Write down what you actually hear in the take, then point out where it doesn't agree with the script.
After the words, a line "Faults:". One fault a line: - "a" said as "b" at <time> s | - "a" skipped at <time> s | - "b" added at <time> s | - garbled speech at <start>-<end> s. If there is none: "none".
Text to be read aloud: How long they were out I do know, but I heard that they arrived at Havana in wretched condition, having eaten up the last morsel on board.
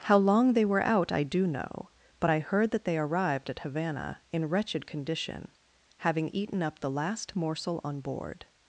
How long they were out I do know, but I heard that they arrived at Havana in wretched condition, having eaten up the last morsel on board.
Faults:
none